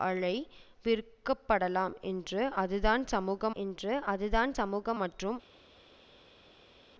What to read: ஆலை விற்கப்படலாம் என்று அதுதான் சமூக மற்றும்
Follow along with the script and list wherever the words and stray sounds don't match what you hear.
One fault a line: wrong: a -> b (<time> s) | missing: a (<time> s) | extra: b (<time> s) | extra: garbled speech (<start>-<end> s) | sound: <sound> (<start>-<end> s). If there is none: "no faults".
extra: என்று அதுதான் சமூக (3.6 s)